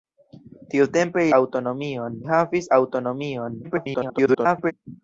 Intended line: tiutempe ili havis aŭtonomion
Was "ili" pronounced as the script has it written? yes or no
no